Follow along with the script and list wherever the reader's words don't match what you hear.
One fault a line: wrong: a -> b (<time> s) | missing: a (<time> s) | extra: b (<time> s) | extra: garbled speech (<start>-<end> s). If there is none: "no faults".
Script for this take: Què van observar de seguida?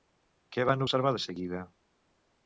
no faults